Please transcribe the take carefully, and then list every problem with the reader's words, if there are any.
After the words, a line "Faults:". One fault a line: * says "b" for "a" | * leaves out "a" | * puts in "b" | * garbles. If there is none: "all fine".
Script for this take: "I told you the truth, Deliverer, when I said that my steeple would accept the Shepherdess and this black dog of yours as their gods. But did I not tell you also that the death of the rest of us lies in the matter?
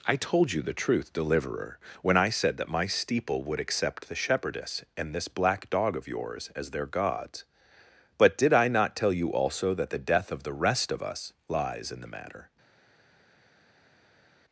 "I told you the truth, Deliverer, when I said that my steeple would accept the Shepherdess and this black dog of yours as their gods. But did I not tell you also that the death of the rest of us lies in the matter?
Faults:
all fine